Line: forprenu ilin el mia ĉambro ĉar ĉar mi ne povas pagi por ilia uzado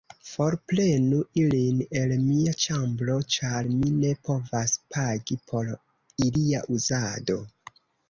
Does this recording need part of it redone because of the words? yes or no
yes